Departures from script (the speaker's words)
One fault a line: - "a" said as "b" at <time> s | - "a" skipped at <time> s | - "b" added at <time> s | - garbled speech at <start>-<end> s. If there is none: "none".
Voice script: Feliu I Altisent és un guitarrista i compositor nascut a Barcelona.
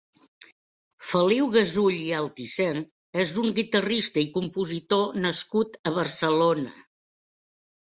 - "Gasull" added at 1.6 s